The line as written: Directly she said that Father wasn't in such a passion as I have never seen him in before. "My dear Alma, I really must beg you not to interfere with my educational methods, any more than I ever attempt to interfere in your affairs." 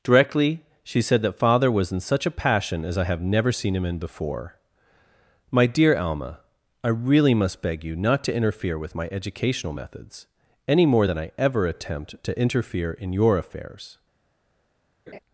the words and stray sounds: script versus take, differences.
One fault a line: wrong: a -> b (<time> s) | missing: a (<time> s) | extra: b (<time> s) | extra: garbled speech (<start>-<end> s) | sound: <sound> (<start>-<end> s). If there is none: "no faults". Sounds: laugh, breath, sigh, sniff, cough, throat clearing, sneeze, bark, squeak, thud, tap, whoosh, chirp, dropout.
wrong: wasn't -> was (1.7 s)
sound: laugh (15.1-15.2 s)